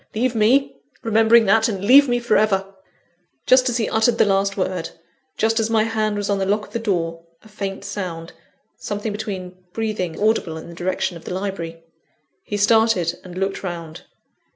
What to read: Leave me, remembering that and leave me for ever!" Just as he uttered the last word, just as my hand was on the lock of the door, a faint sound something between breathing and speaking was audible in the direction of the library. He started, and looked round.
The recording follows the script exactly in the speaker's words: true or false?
false